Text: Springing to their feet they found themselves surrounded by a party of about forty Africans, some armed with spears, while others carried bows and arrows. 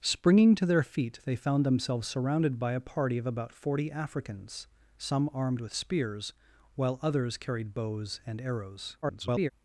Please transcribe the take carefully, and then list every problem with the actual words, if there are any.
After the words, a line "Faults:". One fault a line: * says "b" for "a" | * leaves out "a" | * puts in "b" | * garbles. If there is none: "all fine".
Springing to their feet they found themselves surrounded by a party of about forty Africans, some armed with spears, while others carried bows and arrows. [garbled]
Faults:
* garbles